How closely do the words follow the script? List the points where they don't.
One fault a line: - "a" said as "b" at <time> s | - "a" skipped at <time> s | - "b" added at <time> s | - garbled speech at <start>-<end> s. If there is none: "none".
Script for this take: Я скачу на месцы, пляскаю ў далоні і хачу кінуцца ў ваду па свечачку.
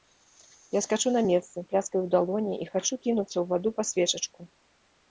none